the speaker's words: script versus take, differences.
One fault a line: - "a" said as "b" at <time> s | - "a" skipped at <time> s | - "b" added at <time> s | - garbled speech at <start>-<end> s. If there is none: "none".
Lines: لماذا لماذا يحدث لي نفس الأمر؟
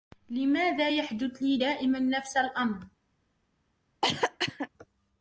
- "لماذا" skipped at 0.9 s
- "دائما" added at 1.5 s